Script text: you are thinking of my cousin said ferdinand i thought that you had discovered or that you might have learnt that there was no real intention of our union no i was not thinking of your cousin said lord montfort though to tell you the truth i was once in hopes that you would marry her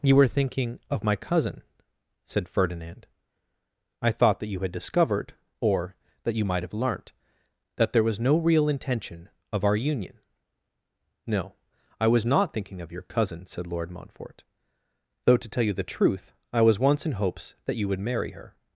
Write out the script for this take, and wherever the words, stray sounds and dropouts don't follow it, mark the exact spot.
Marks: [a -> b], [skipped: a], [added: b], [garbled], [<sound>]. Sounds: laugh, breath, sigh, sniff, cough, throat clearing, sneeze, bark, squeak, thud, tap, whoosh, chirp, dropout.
you [are -> were] thinking of my cousin said ferdinand i thought that you had discovered or that you might have learnt that there was no real intention of our union no i was not thinking of your cousin said lord montfort though to tell you the truth i was once in hopes that you would marry her